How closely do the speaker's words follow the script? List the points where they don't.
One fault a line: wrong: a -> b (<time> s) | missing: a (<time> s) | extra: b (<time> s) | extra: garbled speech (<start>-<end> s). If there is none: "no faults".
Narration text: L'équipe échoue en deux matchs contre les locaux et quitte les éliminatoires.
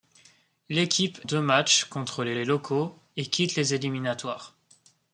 missing: échoue en (1.2 s)
extra: les (2.3 s)